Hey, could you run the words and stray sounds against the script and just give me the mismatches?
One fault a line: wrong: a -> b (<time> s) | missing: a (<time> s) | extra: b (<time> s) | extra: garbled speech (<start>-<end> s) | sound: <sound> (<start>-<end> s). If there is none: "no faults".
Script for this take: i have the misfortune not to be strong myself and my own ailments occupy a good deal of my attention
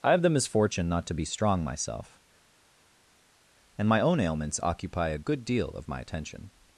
no faults